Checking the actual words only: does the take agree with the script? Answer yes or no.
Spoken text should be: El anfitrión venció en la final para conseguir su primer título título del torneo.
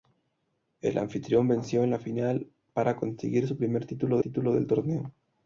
yes